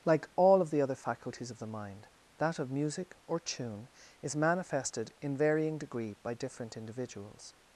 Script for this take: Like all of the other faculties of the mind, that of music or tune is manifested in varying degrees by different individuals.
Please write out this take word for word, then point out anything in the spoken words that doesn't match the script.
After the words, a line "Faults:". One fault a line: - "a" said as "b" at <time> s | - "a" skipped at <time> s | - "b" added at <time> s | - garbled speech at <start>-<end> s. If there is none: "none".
Like all of the other faculties of the mind, that of music or tune is manifested in varying degree by different individuals.
Faults:
- "degrees" said as "degree" at 5.8 s